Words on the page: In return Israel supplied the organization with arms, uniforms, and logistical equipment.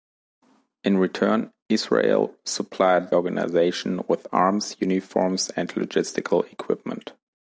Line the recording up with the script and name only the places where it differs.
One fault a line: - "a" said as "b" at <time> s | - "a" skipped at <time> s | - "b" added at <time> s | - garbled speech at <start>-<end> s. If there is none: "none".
- "the" skipped at 3.1 s